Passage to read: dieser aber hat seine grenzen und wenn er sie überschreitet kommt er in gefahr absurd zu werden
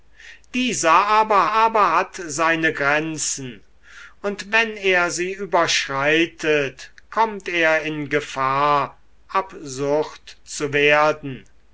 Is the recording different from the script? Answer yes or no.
yes